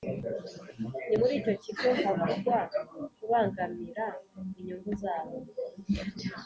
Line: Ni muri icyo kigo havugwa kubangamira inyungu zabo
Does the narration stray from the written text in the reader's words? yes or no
no